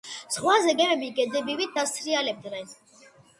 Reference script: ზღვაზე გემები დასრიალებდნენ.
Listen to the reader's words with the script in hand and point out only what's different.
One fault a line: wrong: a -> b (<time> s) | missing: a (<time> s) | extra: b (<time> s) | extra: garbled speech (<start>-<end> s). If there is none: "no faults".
extra: გედებივით (1.2 s)